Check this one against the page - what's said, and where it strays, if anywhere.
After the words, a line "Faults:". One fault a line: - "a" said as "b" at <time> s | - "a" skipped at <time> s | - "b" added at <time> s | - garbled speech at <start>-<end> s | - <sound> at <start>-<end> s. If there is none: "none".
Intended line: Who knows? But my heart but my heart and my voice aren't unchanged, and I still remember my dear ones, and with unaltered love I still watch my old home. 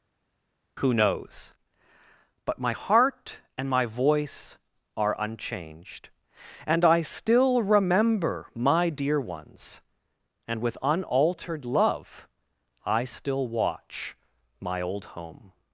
Who knows? But my heart and my voice are unchanged, and I still remember my dear ones, and with unaltered love I still watch my old home.
Faults:
- "but my heart" skipped at 3.4 s
- "aren't" said as "are" at 4.9 s